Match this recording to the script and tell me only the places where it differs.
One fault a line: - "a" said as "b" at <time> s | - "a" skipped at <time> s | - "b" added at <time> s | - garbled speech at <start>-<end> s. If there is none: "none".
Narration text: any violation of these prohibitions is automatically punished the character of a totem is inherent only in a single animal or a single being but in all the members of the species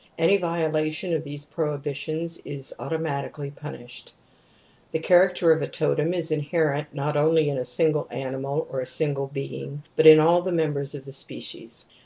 - "not" added at 6.9 s